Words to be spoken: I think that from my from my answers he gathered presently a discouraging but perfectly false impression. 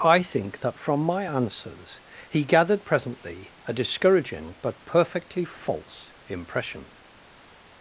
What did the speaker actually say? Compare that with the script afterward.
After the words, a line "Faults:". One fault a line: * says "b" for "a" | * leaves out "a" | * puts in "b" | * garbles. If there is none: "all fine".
I think that from my answers he gathered presently a discouraging but perfectly false impression.
Faults:
* leaves out "from my"